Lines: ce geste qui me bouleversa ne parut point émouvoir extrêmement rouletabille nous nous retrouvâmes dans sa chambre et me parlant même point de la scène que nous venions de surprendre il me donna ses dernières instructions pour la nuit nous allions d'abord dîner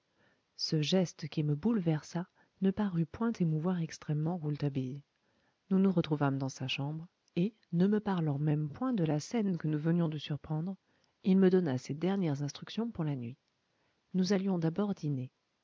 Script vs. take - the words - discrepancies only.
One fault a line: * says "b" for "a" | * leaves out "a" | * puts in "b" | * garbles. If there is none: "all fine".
* puts in "ne"